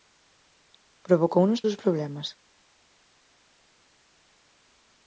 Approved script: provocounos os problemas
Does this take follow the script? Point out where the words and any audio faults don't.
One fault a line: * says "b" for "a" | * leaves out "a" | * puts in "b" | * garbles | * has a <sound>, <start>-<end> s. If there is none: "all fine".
all fine